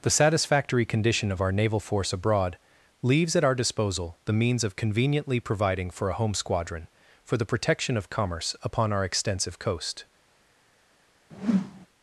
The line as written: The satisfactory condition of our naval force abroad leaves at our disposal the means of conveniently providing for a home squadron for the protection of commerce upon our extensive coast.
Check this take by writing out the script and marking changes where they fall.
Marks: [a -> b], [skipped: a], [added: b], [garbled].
The satisfactory condition of our naval force abroad leaves at our disposal the means of conveniently providing for a home squadron for the protection of commerce upon our extensive coast.